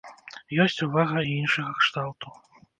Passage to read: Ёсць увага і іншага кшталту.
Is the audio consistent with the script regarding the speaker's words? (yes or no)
yes